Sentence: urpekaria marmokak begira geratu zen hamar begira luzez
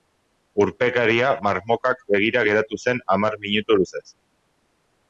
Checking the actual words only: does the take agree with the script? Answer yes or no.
no